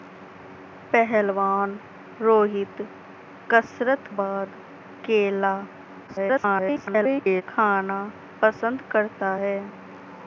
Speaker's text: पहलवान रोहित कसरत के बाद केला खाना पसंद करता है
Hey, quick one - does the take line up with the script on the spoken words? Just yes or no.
no